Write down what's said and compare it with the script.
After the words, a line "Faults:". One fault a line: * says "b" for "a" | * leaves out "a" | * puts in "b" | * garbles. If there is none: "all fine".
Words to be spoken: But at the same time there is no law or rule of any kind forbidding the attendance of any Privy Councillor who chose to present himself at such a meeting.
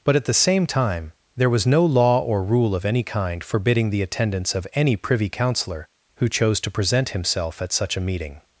But at the same time there was no law or rule of any kind forbidding the attendance of any Privy Councillor who chose to present himself at such a meeting.
Faults:
* says "was" for "is"